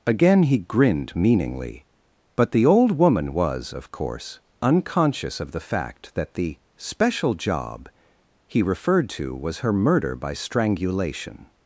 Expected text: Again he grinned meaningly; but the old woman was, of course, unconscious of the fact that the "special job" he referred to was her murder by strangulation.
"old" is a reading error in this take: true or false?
false